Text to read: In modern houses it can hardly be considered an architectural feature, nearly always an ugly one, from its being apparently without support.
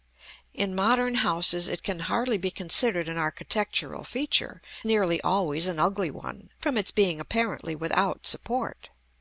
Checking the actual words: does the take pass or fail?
pass